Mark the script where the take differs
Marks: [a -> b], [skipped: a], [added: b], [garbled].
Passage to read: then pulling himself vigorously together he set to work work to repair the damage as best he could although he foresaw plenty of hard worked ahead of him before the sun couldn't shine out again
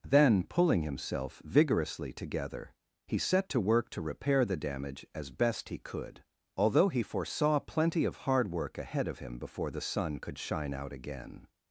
then pulling himself vigorously together he set to work [skipped: work] to repair the damage as best he could although he foresaw plenty of hard [worked -> work] ahead of him before the sun [couldn't -> could] shine out again